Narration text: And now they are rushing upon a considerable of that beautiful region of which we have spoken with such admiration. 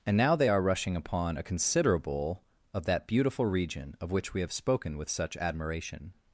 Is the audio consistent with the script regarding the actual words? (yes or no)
yes